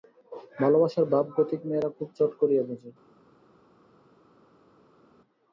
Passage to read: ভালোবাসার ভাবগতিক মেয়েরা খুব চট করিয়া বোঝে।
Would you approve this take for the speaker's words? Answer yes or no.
yes